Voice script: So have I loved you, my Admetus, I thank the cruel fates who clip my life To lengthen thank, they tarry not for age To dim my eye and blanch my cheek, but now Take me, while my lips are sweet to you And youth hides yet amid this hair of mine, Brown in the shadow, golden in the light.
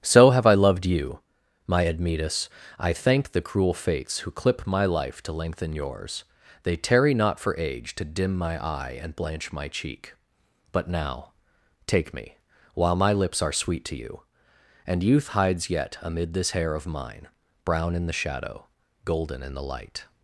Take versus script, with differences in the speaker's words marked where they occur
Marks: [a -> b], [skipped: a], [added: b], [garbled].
So have I loved you, my Admetus, I thank the cruel fates who clip my life To lengthen [thank, -> yours] they tarry not for age To dim my eye and blanch my cheek, but now Take me, while my lips are sweet to you And youth hides yet amid this hair of mine, Brown in the shadow, golden in the light.